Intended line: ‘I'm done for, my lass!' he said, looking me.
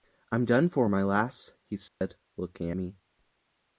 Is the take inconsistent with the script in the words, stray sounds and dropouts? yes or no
yes